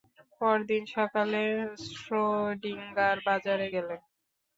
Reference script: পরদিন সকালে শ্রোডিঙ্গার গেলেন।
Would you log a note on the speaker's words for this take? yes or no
yes